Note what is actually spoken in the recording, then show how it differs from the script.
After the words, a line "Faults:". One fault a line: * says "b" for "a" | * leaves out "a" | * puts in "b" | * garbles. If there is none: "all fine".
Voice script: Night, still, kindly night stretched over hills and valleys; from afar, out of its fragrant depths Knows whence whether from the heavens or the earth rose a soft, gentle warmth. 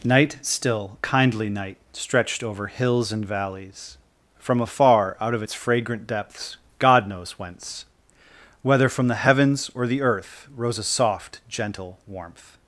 Night, still, kindly night stretched over hills and valleys; from afar, out of its fragrant depths God knows whence whether from the heavens or the earth rose a soft, gentle warmth.
Faults:
* puts in "God"